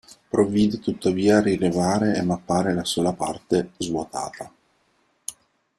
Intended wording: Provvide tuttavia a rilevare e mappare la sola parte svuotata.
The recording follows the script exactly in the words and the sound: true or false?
true